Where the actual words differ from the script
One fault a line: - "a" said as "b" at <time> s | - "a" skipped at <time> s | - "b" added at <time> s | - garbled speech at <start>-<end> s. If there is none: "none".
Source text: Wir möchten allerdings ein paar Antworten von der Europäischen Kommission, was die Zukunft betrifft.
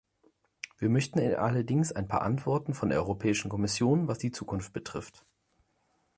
none